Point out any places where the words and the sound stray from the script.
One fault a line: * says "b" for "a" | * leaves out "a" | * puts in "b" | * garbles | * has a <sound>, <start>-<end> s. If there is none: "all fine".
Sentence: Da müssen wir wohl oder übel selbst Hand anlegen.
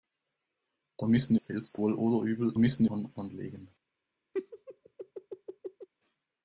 * says "selbst" for "wir"
* says "müssen" for "selbst"
* has a laugh, 4.3-5.9 s